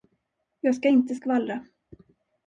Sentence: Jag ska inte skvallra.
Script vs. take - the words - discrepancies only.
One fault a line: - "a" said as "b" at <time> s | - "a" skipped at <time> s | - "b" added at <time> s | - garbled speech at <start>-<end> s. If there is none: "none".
none